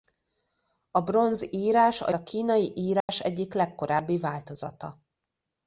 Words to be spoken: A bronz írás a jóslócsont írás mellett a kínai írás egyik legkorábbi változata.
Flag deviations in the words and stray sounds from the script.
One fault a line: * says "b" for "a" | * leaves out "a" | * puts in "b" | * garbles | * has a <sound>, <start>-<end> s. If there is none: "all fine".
* leaves out "jóslócsont írás mellett"
* has a dropout, 3.0-3.1 s